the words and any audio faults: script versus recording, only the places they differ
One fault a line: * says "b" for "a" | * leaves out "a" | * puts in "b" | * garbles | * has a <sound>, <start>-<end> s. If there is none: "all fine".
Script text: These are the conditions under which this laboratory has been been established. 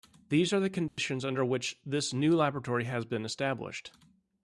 * has a dropout, 0.9-1.0 s
* puts in "new"
* leaves out "been"